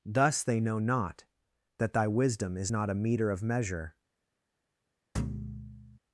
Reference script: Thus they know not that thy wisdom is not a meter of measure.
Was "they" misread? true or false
false